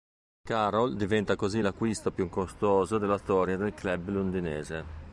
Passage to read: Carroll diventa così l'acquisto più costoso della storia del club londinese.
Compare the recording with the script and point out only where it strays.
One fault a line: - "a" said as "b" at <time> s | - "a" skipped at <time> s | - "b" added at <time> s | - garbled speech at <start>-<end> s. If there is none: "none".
none